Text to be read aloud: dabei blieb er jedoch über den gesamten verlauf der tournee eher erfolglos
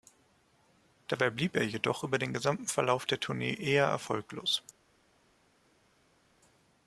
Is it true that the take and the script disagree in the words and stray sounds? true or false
false